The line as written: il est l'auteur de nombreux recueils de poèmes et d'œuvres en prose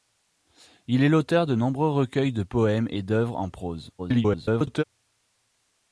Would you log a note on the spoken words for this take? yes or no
yes